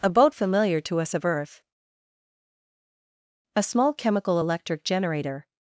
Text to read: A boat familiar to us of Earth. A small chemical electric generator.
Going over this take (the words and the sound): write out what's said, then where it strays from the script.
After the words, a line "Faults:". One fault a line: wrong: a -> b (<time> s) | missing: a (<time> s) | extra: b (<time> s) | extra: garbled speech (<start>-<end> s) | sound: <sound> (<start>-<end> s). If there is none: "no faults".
A boat familiar to us of Earth. A small chemical electric generator.
Faults:
no faults